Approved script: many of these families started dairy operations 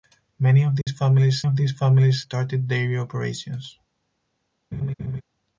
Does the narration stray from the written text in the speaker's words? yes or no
yes